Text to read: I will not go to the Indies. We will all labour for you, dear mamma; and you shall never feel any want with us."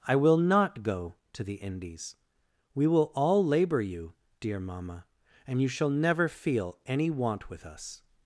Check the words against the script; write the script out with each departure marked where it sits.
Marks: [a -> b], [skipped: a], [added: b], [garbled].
I will not go to the Indies. We will all labour [skipped: for] you, dear mamma; and you shall never feel any want with us."